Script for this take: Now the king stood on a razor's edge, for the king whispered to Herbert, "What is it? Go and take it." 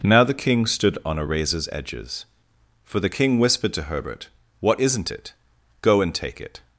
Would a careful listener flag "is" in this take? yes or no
yes